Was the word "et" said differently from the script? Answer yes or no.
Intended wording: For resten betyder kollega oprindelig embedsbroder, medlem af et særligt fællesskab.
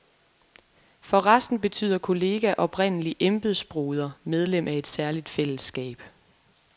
no